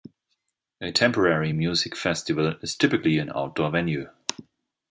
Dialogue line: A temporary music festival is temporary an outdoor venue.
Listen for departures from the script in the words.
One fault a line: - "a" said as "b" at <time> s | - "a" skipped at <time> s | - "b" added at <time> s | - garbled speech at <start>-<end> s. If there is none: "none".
- "temporary" said as "typically" at 2.8 s